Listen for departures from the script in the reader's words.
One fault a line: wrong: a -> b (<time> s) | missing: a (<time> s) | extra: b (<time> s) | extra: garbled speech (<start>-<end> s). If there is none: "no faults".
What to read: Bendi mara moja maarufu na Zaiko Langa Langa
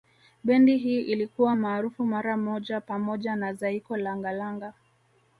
extra: hii ilikuwa maarufu (0.8 s)
wrong: maarufu -> pamoja (2.8 s)